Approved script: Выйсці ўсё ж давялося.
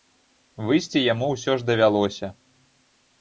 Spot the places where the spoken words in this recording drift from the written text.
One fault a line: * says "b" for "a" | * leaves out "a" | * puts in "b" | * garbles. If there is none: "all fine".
* puts in "яму"